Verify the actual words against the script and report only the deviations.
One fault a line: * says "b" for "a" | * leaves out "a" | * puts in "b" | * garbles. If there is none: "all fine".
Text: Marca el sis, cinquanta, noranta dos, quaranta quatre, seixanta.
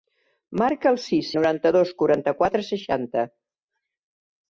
* leaves out "cinquanta"